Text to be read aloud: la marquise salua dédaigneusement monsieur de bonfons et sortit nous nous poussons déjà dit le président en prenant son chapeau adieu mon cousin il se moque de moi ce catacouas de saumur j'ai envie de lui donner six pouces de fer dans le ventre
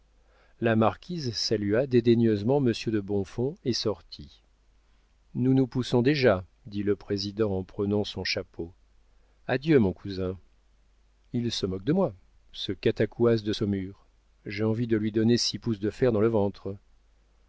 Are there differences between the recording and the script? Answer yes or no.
no